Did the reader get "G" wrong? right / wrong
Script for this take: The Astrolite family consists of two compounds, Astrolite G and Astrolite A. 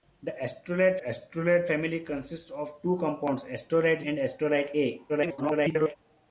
wrong